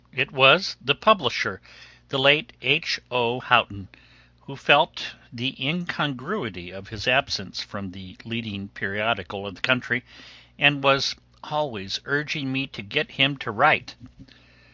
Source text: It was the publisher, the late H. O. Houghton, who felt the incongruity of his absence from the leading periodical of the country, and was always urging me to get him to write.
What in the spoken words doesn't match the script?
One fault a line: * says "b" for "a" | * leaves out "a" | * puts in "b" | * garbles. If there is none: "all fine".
all fine